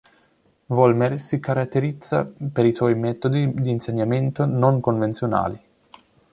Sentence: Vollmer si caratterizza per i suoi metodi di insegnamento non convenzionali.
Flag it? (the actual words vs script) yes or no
no